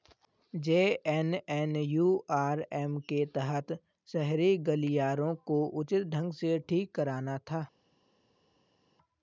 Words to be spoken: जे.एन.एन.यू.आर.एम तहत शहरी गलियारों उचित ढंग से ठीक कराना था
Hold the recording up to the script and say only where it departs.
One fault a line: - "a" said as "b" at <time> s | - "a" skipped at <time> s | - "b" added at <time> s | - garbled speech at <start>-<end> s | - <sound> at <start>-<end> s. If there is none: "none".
- "के" added at 3.1 s
- "को" added at 5.5 s